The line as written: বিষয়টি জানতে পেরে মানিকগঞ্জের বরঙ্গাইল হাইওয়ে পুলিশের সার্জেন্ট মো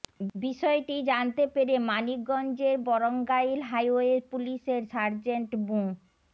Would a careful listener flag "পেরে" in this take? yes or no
no